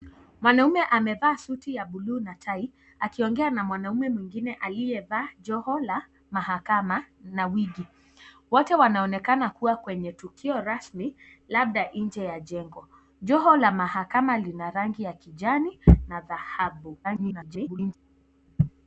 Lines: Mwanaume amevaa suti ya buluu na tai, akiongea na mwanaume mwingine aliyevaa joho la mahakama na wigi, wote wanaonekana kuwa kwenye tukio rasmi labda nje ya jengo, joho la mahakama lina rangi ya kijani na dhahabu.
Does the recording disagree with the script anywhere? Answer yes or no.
yes